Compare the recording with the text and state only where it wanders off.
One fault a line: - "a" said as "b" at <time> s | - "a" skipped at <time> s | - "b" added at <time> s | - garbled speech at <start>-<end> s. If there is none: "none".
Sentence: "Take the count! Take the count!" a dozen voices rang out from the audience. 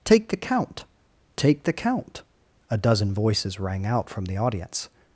none